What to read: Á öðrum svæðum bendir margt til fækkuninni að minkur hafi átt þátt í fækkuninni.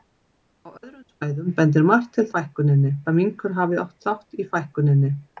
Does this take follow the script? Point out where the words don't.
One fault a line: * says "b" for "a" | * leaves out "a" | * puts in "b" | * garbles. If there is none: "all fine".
all fine